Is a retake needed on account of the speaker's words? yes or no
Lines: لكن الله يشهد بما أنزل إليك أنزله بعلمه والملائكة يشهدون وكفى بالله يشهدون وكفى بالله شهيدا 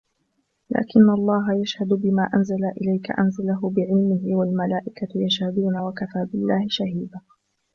yes